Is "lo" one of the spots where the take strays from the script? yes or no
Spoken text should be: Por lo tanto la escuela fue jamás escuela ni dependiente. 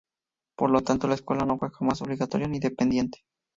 no